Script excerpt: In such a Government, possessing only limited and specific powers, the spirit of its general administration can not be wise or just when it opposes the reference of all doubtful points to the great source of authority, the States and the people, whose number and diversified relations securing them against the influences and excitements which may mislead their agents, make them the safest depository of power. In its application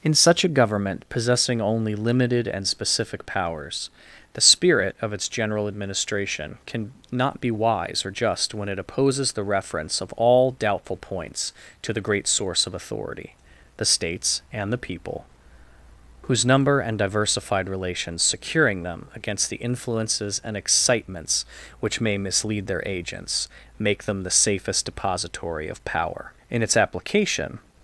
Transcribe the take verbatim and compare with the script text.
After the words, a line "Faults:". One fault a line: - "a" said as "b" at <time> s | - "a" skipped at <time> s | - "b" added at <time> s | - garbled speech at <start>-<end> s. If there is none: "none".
In such a Government, possessing only limited and specific powers, the spirit of its general administration can not be wise or just when it opposes the reference of all doubtful points to the great source of authority, the States and the people, whose number and diversified relations securing them against the influences and excitements which may mislead their agents, make them the safest depository of power. In its application
Faults:
none